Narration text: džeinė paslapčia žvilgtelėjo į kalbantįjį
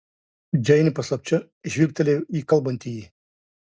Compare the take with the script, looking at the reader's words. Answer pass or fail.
pass